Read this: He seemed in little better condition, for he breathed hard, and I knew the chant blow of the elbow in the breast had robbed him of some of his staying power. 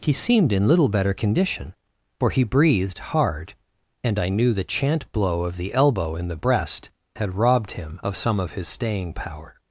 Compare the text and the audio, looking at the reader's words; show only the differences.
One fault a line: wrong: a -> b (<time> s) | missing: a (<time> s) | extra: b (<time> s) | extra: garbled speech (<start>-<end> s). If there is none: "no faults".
no faults